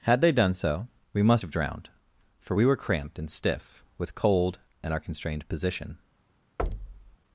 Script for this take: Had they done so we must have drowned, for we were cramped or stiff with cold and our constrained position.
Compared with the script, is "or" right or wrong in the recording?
wrong